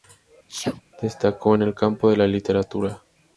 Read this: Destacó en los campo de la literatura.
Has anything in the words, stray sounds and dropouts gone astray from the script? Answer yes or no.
yes